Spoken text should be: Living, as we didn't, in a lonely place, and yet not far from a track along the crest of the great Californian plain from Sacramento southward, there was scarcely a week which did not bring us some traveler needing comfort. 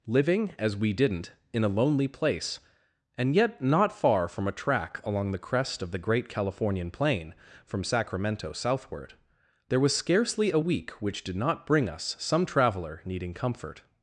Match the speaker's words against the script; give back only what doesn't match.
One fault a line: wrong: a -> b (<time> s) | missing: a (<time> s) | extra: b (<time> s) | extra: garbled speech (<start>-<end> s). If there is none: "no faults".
no faults